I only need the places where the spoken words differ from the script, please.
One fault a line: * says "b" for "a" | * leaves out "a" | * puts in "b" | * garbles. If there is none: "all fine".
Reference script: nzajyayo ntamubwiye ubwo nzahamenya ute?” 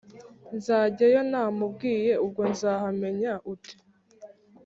all fine